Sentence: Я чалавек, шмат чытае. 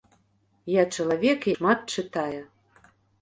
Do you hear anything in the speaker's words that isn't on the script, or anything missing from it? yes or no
no